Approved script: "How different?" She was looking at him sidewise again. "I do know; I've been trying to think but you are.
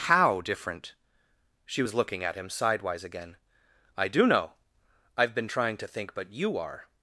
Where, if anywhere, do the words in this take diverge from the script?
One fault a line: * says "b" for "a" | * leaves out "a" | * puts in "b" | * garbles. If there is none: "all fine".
all fine